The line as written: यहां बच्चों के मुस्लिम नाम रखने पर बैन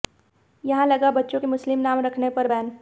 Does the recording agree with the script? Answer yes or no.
no